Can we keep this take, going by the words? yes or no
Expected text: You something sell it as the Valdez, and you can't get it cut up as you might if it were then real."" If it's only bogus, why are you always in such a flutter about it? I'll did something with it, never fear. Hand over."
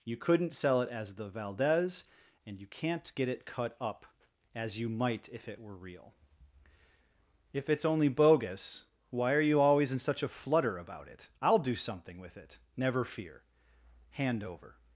no